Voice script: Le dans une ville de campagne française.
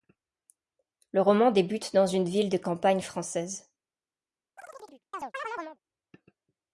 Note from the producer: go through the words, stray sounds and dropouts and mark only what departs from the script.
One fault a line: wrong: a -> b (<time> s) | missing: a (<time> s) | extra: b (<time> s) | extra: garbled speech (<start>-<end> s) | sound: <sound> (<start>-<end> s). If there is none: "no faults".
extra: roman débute (1.2 s)
sound: chirp (4.6-5.8 s)